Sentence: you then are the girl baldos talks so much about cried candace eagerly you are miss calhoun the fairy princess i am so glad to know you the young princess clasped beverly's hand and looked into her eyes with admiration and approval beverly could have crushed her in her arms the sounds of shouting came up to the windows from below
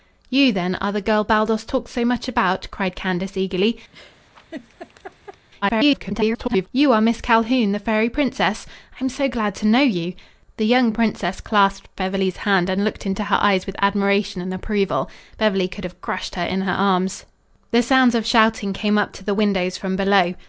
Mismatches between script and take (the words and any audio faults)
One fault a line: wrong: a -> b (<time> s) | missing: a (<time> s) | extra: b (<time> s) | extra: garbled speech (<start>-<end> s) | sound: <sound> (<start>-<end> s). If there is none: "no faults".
sound: laugh (3.9-5.5 s)
extra: garbled speech (5.6-6.7 s)